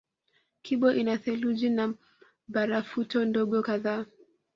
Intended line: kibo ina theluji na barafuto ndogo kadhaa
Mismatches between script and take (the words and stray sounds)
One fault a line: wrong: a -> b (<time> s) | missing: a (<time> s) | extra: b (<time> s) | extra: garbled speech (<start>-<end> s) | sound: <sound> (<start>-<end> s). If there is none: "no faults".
no faults